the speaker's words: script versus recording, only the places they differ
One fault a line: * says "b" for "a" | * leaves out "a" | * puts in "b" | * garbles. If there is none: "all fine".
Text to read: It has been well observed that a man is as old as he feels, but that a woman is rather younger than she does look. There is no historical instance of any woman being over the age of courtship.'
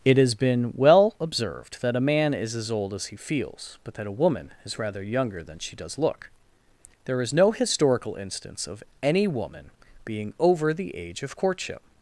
all fine